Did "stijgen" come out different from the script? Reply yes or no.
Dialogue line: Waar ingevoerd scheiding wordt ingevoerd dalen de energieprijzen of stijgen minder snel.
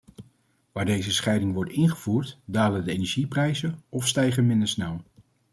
no